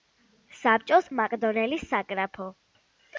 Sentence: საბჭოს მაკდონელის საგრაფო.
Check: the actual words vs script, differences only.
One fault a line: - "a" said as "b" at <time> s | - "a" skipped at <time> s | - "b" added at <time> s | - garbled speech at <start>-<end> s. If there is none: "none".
none